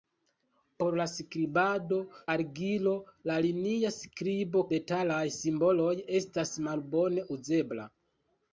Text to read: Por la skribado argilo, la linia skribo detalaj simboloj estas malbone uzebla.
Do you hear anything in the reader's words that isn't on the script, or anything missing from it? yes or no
no